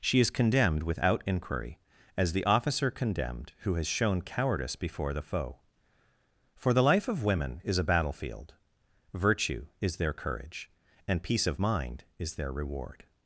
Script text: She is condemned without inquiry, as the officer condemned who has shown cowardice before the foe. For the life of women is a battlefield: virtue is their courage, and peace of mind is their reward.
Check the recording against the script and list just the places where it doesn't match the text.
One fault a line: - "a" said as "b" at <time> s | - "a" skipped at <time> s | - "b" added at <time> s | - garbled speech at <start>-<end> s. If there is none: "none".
none